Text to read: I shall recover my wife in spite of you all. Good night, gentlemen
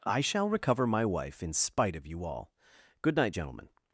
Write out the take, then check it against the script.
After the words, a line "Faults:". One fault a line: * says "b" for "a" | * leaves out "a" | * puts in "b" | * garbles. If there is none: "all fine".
I shall recover my wife in spite of you all. Good night, gentlemen
Faults:
all fine